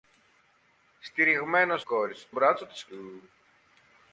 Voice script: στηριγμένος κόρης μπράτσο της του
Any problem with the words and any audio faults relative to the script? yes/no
no